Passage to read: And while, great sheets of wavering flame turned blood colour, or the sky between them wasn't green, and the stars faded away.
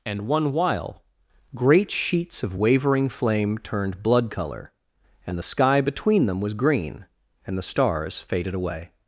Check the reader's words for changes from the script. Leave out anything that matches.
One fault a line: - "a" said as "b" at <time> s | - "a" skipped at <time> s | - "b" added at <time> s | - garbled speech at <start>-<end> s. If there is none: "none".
- "one" added at 0.3 s
- "or" said as "and" at 5.3 s
- "wasn't" said as "was" at 6.4 s